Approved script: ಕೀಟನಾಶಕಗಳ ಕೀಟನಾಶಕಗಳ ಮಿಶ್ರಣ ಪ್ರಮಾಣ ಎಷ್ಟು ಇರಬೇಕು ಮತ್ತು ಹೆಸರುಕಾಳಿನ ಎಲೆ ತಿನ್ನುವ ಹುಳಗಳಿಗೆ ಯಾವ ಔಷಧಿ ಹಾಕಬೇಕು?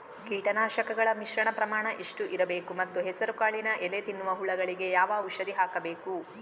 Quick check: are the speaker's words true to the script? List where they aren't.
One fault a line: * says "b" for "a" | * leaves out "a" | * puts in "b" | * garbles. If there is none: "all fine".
* leaves out "ಕೀಟನಾಶಕಗಳ"